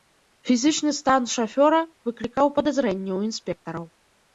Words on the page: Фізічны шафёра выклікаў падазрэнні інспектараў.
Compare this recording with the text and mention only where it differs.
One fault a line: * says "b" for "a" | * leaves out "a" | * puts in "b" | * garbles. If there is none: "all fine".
* puts in "стан"
* puts in "ў"